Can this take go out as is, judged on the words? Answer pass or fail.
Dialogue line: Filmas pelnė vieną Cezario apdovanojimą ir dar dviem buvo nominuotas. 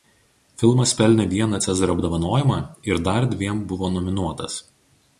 pass